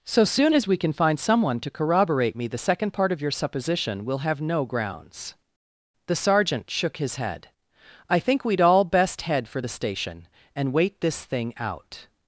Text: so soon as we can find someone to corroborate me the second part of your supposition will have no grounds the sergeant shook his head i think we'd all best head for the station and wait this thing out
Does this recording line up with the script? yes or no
yes